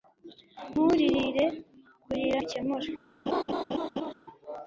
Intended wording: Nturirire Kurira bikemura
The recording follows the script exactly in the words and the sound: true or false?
false